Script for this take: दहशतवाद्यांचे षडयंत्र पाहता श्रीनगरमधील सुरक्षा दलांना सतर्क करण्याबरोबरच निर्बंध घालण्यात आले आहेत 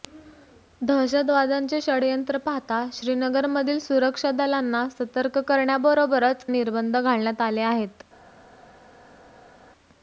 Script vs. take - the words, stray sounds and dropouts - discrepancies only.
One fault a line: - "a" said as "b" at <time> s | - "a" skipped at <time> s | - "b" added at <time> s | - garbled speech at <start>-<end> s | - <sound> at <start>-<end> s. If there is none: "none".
none